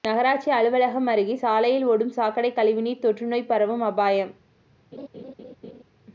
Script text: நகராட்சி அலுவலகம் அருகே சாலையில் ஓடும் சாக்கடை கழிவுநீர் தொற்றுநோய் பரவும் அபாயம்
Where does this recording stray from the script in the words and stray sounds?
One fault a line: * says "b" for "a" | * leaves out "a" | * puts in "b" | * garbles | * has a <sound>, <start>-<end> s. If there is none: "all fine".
* has a laugh, 4.9-5.8 s